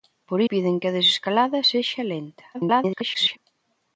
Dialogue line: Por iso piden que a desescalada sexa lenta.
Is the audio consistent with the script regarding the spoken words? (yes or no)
no